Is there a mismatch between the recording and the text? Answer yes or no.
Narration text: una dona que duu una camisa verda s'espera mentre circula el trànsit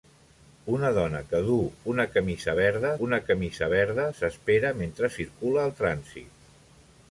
yes